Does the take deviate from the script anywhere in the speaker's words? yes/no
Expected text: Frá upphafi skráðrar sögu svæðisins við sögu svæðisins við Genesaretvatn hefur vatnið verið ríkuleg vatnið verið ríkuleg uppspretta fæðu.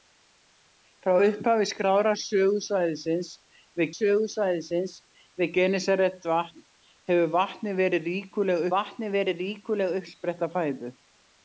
no